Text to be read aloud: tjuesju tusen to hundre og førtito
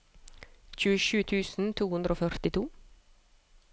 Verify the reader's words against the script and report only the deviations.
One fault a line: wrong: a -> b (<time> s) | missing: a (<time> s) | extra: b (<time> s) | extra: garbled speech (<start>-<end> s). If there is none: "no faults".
no faults